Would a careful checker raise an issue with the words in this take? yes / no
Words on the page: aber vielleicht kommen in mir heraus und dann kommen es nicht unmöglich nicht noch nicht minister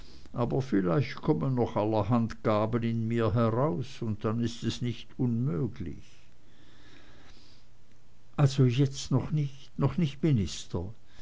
yes